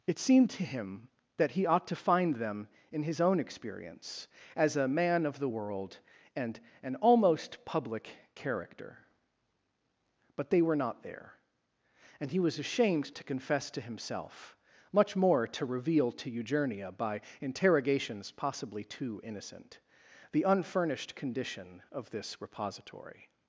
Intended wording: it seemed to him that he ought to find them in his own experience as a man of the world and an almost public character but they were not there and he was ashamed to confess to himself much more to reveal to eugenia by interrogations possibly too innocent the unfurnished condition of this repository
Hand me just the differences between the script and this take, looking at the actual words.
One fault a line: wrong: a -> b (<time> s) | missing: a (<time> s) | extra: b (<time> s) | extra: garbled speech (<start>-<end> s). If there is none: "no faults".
no faults